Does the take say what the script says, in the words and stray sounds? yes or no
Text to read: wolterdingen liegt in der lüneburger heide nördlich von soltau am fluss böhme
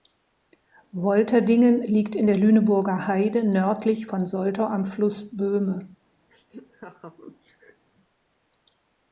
no